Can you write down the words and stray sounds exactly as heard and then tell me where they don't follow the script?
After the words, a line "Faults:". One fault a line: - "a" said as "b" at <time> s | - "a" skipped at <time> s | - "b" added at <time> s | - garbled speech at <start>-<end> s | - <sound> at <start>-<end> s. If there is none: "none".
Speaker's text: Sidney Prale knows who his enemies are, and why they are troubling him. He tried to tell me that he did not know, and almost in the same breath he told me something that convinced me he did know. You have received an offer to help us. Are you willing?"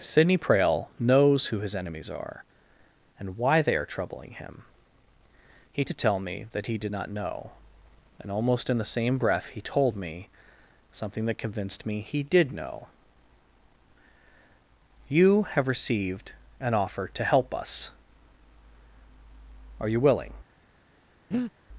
Sidney Prale knows who his enemies are, and why they are troubling him. He to tell me that he did not know, and almost in the same breath he told me something that convinced me he did know. You have received an offer to help us. Are you willing?"
Faults:
- "tried" skipped at 5.8 s
- breath at 21.3-21.5 s